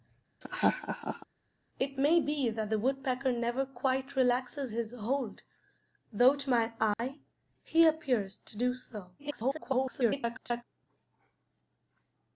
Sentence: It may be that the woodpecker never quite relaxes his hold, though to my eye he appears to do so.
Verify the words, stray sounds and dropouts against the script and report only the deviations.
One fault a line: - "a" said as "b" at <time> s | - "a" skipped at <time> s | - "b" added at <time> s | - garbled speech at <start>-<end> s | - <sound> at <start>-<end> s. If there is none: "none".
- laugh at 0.4-1.3 s
- dropout at 6.9-7.0 s
- garbled speech at 9.2-10.6 s